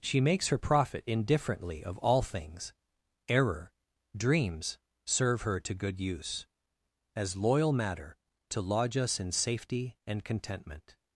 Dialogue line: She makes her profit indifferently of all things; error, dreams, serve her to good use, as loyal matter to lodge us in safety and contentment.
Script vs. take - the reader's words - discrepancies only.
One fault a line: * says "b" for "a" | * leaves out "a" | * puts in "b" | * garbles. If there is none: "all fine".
all fine